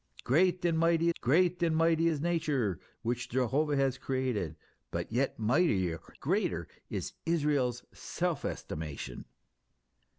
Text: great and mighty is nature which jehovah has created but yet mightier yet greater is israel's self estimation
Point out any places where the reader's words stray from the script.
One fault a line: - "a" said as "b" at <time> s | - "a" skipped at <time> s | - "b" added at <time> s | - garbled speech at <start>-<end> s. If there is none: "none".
- "great and mighty" added at 1.2 s
- "yet" skipped at 6.0 s